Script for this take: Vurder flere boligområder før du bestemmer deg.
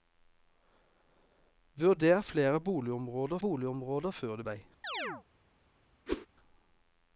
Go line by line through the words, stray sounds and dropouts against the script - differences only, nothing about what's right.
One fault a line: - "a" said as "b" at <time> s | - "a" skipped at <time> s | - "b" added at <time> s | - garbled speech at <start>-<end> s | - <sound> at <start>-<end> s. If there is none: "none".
- "boligområder" added at 3.4 s
- "bestemmer" skipped at 4.4 s
- chirp at 4.8-5.2 s
- whoosh at 6.1-6.3 s